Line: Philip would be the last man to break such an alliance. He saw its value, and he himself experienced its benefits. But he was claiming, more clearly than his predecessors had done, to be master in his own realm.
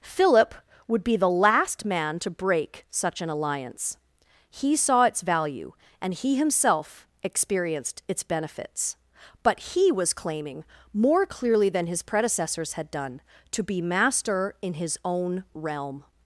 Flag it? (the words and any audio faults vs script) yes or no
no